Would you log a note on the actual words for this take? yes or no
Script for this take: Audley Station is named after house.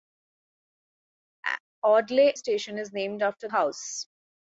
no